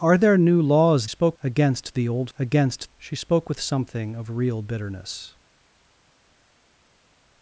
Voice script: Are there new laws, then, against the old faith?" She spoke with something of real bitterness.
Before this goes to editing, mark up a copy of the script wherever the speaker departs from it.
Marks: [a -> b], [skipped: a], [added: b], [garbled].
Are there new laws, [then, -> spoke] against the old [faith?" -> against] She spoke with something of real bitterness.